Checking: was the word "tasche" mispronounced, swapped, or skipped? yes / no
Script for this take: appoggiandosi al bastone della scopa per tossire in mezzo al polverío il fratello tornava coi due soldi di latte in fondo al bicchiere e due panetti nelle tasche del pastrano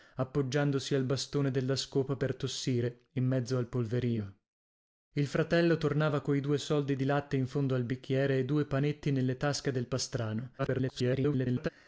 no